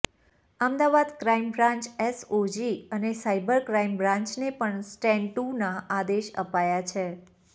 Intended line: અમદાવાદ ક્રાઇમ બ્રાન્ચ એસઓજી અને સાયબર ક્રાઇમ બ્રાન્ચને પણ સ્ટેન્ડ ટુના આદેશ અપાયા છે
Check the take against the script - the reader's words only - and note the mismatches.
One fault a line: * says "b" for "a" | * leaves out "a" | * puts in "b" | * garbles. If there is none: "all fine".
all fine